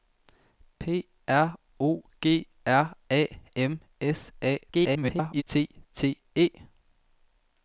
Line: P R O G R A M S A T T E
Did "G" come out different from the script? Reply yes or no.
no